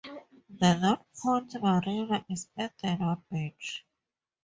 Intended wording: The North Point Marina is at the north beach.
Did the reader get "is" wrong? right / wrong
right